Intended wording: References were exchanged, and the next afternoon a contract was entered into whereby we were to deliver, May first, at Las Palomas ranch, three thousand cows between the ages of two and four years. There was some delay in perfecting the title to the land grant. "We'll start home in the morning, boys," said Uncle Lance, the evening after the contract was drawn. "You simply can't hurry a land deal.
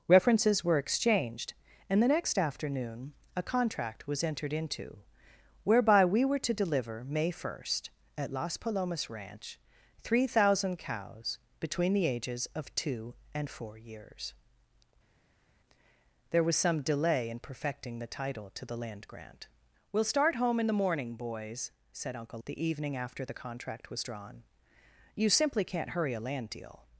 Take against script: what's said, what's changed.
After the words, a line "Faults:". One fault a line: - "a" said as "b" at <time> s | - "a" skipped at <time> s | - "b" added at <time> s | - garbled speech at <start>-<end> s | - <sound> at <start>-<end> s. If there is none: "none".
References were exchanged, and the next afternoon a contract was entered into whereby we were to deliver, May first, at Las Palomas ranch, three thousand cows between the ages of two and four years. There was some delay in perfecting the title to the land grant. "We'll start home in the morning, boys," said Uncle The evening after the contract was drawn. "You simply can't hurry a land deal.
Faults:
- "Lance" skipped at 22.4 s